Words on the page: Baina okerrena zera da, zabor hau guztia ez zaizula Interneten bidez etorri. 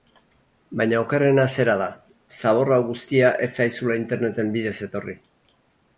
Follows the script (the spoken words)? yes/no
yes